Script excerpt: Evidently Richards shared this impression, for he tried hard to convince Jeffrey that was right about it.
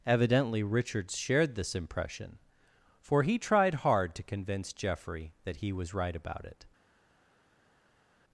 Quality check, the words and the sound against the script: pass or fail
fail